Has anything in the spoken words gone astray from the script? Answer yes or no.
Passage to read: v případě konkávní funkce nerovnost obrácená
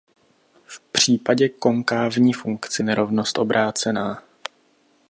no